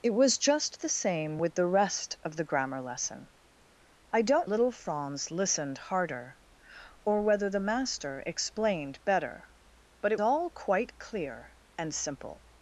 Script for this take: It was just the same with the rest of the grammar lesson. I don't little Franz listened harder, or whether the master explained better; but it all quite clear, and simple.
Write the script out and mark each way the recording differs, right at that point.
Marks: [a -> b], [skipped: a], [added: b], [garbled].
It was just the same with the rest of the grammar lesson. I don't little Franz listened harder, or whether the master explained better; but it all quite clear, and simple.